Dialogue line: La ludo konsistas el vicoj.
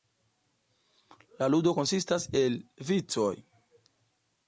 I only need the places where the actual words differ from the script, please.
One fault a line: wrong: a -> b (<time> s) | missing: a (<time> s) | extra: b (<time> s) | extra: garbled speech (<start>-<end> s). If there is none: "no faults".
no faults